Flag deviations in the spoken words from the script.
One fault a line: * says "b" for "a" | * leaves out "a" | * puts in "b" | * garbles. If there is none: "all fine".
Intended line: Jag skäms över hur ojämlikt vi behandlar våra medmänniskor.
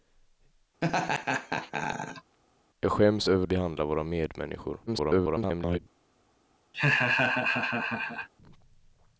* leaves out "hur ojämlikt vi"
* garbles